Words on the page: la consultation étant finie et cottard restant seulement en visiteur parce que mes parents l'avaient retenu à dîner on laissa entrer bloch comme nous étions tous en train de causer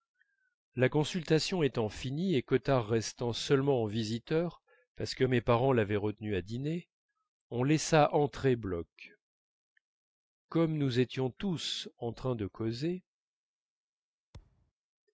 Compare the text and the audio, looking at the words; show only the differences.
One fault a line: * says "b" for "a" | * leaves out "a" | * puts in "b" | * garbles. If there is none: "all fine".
all fine